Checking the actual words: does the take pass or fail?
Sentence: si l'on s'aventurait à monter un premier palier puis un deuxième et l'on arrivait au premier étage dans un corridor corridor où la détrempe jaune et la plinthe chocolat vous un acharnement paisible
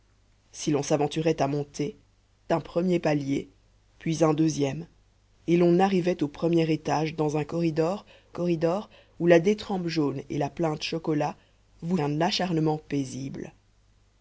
pass